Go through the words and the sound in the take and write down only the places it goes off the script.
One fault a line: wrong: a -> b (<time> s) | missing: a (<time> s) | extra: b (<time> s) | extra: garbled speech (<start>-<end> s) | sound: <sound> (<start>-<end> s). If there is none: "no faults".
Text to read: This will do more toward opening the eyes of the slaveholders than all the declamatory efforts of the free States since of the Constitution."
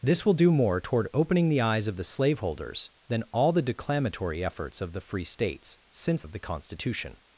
no faults